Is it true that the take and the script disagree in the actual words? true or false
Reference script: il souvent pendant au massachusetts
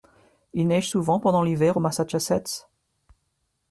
true